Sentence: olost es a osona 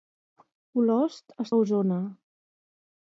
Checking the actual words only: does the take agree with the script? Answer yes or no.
yes